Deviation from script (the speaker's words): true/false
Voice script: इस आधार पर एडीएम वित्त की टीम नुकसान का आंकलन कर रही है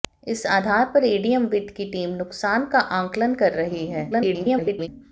true